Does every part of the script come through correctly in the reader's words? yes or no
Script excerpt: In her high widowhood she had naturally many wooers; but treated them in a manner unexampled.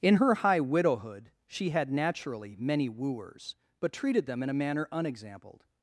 yes